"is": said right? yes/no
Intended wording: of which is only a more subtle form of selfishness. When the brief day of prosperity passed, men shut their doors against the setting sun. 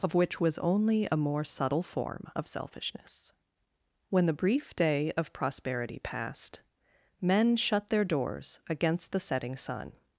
no